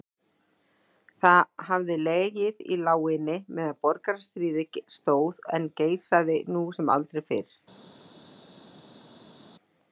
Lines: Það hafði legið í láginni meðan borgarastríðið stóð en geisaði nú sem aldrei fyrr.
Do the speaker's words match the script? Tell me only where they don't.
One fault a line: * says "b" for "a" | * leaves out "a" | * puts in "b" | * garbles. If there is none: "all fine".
all fine